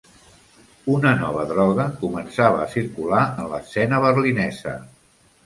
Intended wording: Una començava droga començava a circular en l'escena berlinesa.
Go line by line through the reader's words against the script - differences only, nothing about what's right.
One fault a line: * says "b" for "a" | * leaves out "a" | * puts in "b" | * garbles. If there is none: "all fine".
* says "nova" for "començava"